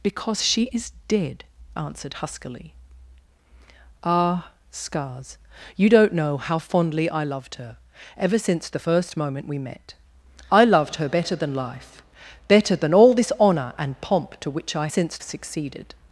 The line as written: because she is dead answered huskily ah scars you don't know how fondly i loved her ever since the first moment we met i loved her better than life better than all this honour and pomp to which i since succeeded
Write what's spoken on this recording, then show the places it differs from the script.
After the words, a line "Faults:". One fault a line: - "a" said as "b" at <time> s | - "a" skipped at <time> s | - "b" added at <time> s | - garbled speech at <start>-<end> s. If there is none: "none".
because she is dead answered huskily ah scars you don't know how fondly i loved her ever since the first moment we met i loved her better than life better than all this honour and pomp to which i since succeeded
Faults:
none